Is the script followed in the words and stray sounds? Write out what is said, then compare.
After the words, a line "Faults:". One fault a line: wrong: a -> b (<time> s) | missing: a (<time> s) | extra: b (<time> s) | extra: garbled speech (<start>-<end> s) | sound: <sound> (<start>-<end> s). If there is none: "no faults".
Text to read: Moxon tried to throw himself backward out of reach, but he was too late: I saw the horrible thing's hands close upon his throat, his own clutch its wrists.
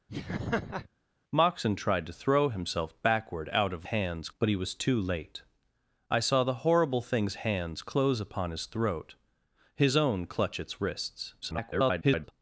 Moxon tried to throw himself backward out of hands, but he was too late: I saw the horrible thing's hands close upon his throat, his own clutch its wrists. [garbled]
Faults:
sound: laugh (0.1-0.9 s)
wrong: reach -> hands (3.8 s)
extra: garbled speech (11.4-12.3 s)